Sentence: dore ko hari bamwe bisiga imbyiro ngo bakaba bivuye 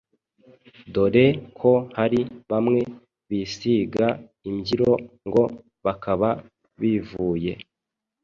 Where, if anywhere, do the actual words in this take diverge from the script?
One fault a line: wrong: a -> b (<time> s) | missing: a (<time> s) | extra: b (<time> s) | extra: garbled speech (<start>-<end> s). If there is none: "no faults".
no faults